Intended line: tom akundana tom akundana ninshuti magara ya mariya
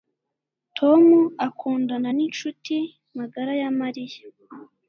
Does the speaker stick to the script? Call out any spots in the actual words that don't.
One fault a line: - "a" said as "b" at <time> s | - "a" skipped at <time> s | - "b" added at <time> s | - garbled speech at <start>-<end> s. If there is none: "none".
- "tom akundana" skipped at 2.1 s